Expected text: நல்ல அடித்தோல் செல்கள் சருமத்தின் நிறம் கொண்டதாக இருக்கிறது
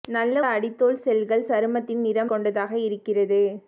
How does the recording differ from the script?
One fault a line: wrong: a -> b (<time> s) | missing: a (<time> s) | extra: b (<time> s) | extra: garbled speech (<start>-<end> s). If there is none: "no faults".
no faults